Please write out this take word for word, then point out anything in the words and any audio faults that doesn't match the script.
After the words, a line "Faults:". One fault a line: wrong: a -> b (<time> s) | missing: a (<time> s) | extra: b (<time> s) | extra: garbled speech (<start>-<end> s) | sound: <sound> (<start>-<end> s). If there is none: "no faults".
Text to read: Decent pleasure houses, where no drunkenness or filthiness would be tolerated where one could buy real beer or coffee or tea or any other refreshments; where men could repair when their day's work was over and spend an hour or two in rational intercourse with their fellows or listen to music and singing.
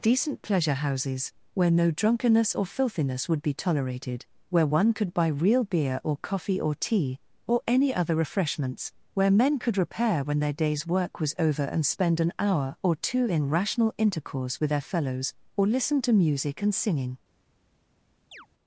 Decent pleasure houses, where no drunkenness or filthiness would be tolerated where one could buy real beer or coffee or tea or any other refreshments; where men could repair when their day's work was over and spend an hour or two in rational intercourse with their fellows or listen to music and singing.
Faults:
sound: chirp (18.3-18.5 s)